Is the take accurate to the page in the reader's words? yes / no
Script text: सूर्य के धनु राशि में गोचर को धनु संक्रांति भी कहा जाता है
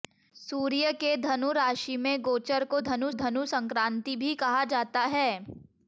no